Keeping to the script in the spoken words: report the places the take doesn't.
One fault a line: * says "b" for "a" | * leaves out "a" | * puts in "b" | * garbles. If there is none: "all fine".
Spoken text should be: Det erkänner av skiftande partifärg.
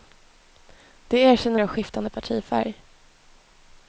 all fine